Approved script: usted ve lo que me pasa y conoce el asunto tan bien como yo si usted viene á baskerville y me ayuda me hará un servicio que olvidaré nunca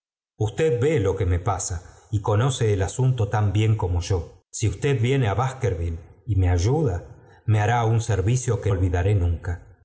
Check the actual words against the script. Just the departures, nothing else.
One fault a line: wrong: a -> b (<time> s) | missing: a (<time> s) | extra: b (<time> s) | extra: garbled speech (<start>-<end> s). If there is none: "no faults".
no faults